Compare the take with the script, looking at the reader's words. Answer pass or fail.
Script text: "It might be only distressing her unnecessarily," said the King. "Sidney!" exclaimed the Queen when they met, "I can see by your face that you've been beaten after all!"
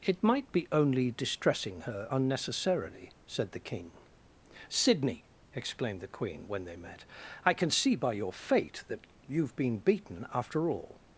fail